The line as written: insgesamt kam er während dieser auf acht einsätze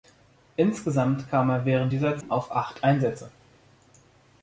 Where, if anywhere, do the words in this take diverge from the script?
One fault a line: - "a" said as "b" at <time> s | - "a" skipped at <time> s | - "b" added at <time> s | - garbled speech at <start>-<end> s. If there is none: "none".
none